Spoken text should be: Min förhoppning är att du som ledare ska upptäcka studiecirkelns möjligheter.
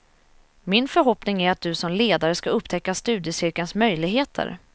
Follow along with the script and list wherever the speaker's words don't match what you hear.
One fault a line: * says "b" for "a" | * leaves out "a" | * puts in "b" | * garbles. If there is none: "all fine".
all fine